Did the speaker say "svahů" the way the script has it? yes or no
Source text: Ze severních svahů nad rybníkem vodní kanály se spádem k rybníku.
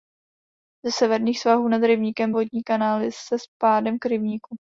yes